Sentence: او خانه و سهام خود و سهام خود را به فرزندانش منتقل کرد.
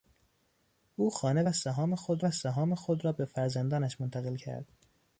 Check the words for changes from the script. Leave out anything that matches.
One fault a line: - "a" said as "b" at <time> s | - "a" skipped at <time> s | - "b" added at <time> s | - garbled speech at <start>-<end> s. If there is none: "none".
none